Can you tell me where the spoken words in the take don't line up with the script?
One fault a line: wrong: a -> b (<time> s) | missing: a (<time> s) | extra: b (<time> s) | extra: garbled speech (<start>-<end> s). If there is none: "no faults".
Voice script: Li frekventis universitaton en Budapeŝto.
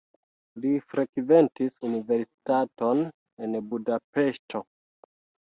no faults